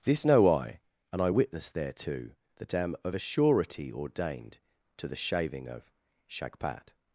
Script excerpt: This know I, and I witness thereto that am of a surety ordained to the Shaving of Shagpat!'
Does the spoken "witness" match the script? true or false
true